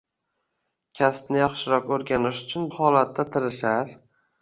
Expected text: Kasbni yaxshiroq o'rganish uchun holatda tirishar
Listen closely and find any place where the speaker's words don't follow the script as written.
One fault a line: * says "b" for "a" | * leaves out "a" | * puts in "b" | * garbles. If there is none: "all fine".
all fine